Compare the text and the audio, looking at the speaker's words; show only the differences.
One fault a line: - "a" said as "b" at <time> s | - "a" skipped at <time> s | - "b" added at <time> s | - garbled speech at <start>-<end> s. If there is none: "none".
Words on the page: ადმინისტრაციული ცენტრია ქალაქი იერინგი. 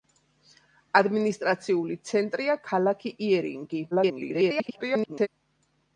- garbled speech at 3.9-5.3 s